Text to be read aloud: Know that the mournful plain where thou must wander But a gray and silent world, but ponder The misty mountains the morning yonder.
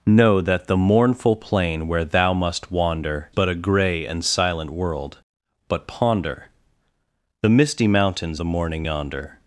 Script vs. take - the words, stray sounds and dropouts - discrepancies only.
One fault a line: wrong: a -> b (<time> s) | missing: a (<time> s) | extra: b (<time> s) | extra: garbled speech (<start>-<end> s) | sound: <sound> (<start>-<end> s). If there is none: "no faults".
no faults